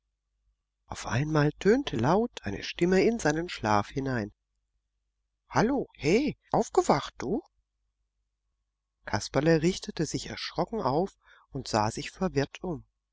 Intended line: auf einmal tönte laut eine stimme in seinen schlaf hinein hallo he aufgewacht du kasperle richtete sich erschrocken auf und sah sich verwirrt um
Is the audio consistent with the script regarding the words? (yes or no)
yes